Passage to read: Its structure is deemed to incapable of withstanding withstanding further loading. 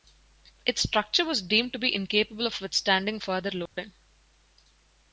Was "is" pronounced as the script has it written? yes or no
no